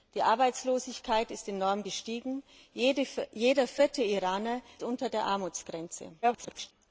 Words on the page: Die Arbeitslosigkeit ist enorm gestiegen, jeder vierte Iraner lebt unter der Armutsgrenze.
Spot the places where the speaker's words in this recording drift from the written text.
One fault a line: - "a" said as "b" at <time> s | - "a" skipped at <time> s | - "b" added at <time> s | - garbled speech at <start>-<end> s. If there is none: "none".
- "lebt" skipped at 4.6 s
- garbled speech at 6.2-6.7 s